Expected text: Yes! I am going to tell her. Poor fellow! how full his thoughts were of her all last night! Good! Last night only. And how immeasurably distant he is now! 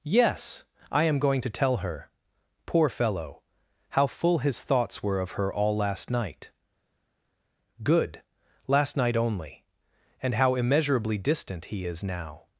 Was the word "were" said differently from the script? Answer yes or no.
no